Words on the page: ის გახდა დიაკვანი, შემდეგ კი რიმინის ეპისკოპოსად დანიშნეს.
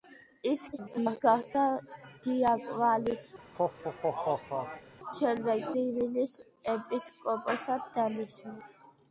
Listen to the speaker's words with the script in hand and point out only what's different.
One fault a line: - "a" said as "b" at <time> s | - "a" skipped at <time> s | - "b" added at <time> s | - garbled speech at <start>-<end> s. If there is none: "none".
- garbled speech at 0.7-1.2 s
- "კი" skipped at 5.7 s